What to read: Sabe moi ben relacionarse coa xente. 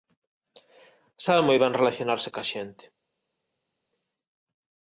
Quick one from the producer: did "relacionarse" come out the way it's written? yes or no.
yes